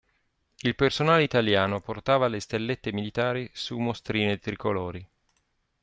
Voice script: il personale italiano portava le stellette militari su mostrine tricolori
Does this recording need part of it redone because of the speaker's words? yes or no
no